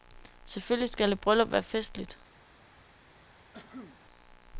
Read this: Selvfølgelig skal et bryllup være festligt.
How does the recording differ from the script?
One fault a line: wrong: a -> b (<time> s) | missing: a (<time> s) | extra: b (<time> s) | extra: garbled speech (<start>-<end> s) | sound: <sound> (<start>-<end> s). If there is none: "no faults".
sound: cough (3.5-4.0 s)